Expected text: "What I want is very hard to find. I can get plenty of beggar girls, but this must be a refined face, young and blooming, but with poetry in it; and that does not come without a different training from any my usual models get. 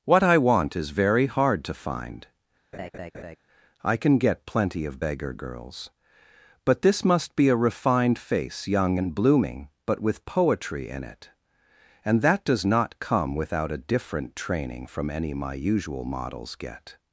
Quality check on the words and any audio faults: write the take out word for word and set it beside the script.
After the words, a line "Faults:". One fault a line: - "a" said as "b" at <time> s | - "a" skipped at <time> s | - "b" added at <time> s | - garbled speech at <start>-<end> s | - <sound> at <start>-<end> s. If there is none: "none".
"What I want is very hard to find. I can get plenty of beggar girls, but this must be a refined face, young and blooming, but with poetry in it; and that does not come without a different training from any my usual models get.
Faults:
- laugh at 2.7-3.4 s